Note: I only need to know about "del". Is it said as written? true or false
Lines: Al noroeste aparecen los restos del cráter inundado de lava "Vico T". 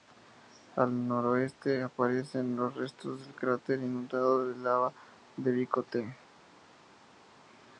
true